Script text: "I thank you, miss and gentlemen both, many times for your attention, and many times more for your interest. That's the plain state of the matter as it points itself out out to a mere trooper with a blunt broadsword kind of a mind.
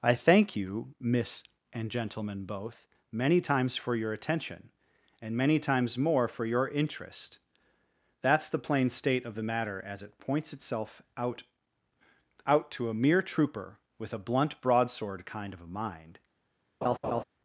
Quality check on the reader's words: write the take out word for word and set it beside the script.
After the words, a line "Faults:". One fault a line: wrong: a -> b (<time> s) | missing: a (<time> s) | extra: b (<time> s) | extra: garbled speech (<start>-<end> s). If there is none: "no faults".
"I thank you, miss and gentlemen both, many times for your attention, and many times more for your interest. That's the plain state of the matter as it points itself out out to a mere trooper with a blunt broadsword kind of a mind.
Faults:
no faults